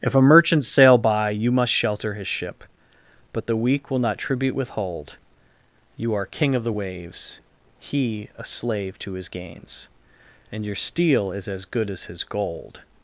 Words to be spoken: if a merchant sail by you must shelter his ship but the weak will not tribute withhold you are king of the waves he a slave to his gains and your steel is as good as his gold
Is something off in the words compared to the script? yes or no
no